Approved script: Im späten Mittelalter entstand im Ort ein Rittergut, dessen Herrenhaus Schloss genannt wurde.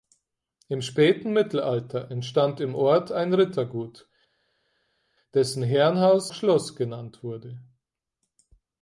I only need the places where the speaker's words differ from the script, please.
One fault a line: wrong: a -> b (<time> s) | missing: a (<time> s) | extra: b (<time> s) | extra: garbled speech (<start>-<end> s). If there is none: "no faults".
no faults